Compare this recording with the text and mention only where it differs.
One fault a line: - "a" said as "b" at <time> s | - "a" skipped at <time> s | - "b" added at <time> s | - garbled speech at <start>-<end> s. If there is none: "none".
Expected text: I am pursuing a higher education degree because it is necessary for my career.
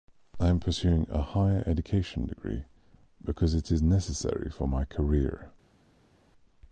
none